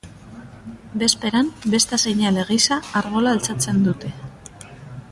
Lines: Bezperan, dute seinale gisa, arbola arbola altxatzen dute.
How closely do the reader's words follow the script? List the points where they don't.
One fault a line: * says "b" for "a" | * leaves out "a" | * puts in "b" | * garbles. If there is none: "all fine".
* says "besta" for "dute"
* leaves out "arbola"